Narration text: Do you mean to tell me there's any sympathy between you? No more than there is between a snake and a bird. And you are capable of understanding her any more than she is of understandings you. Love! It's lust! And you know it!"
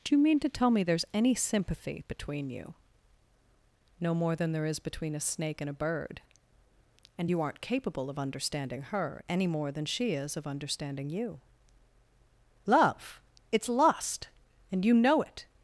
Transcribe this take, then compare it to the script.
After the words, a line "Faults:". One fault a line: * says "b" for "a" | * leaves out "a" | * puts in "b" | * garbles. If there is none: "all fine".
Do you mean to tell me there's any sympathy between you? No more than there is between a snake and a bird. And you aren't capable of understanding her any more than she is of understanding you. Love! It's lust! And you know it!"
Faults:
* says "aren't" for "are"
* says "understanding" for "understandings"